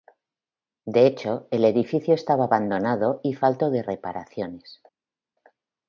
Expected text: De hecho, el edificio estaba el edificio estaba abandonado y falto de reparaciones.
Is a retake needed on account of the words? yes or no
yes